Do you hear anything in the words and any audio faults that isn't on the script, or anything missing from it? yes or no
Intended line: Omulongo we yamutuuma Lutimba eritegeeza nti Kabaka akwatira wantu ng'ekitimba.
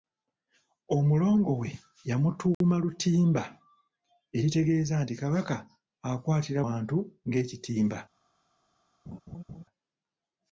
yes